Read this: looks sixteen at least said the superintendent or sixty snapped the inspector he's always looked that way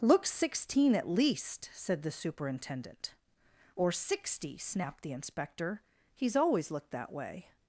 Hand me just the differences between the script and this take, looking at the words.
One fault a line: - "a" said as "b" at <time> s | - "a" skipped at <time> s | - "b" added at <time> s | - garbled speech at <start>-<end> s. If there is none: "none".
none